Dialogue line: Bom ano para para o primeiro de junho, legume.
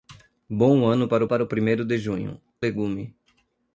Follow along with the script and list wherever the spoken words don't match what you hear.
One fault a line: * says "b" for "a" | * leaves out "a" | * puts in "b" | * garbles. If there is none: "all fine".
all fine